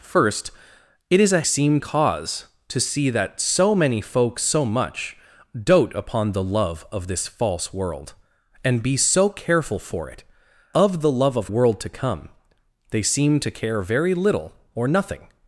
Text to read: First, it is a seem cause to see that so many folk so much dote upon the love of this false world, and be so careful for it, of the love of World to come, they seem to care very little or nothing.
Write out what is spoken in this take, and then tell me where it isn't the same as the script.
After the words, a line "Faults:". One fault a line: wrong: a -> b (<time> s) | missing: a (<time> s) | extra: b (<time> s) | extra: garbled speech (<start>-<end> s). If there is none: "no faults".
First, it is a seem cause to see that so many folk so much dote upon the love of this false world, and be so careful for it, of the love of World to come, they seem to care very little or nothing.
Faults:
no faults